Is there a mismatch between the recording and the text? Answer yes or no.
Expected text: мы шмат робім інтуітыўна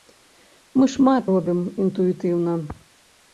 no